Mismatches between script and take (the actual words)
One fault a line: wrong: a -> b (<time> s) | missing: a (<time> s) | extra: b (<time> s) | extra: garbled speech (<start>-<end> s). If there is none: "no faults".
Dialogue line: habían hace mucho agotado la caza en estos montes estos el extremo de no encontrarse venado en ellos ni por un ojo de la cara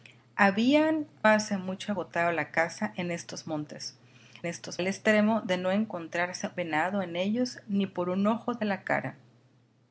no faults